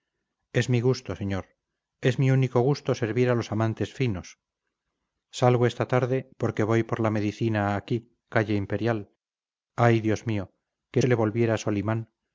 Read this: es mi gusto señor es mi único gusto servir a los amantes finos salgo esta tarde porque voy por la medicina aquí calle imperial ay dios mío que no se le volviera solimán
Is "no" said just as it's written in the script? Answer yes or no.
no